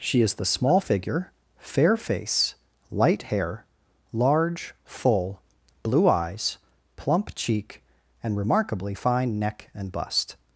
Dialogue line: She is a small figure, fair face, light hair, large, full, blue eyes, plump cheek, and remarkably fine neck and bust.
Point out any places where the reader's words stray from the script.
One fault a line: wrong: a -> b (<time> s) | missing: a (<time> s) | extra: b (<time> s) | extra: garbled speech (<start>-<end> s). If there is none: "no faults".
wrong: a -> the (0.3 s)